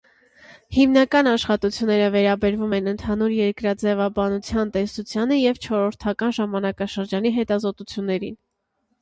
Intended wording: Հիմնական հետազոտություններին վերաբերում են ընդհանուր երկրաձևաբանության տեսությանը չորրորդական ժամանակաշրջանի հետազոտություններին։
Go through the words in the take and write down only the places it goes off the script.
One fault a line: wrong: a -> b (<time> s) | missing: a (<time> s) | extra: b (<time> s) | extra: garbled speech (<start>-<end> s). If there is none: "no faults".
wrong: հետազոտություններին -> աշխատությունները (1.3 s)
extra: և (5.4 s)